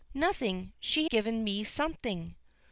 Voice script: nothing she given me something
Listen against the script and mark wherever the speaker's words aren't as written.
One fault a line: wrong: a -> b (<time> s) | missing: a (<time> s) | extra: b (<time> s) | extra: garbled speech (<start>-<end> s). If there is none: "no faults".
no faults